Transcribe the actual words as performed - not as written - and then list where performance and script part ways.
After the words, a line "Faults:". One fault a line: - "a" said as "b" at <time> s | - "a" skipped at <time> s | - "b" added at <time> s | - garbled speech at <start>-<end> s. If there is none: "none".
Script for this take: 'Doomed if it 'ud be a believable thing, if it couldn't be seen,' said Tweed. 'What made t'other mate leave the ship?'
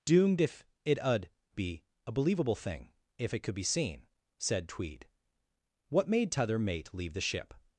'Doomed if it 'ud be a believable thing, if it could be seen,' said Tweed. 'What made t'other mate leave the ship?'
Faults:
- "couldn't" said as "could" at 3.4 s